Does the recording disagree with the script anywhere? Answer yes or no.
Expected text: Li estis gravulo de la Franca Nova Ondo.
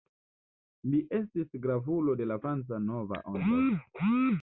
no